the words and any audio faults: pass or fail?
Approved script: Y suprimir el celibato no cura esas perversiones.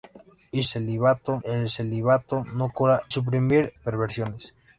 fail